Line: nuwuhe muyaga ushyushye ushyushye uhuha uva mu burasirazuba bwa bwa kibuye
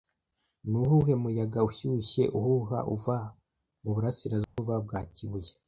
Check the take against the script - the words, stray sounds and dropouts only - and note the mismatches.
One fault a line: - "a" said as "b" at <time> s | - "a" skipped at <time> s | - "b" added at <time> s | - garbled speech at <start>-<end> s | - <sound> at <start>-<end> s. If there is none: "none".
- "ushyushye" skipped at 2.2 s
- dropout at 4.4-4.6 s
- "bwa" skipped at 5.0 s